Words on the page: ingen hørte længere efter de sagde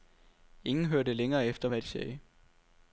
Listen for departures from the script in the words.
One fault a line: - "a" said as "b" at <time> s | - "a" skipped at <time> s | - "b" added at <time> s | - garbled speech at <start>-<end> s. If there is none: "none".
- "hvad" added at 1.7 s